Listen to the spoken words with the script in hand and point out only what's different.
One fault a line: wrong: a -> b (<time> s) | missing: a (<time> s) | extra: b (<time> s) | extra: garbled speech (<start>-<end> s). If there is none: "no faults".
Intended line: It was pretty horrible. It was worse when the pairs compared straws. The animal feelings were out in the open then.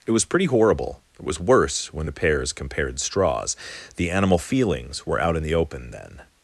no faults